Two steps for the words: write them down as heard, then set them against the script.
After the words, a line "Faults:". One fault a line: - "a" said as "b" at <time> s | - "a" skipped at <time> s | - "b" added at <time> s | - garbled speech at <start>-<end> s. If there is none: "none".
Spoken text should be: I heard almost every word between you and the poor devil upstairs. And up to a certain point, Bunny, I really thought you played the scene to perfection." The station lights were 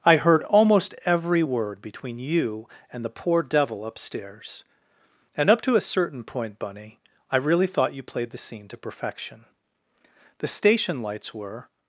I heard almost every word between you and the poor devil upstairs. And up to a certain point, Bunny, I really thought you played the scene to perfection." The station lights were
Faults:
none